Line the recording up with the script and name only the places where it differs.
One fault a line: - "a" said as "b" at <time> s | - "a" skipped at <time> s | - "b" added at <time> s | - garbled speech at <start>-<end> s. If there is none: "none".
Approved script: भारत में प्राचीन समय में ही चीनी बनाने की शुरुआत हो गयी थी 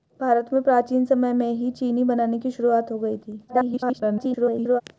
- garbled speech at 3.5-4.8 s